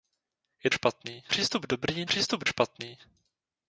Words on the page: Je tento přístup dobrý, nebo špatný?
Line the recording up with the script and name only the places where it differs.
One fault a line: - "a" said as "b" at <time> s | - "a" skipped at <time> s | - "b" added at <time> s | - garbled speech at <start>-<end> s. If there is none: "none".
- "tento" said as "špatný" at 0.7 s
- "nebo" said as "přístup" at 2.1 s